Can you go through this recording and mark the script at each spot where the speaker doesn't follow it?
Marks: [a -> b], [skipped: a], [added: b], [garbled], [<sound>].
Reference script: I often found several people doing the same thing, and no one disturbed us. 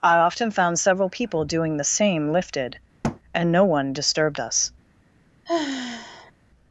I often found several people doing the same [thing, -> lifted] [thud] and no one disturbed us. [sigh]